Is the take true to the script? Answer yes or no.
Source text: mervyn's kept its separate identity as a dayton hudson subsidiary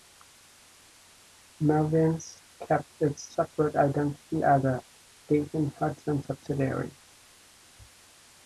yes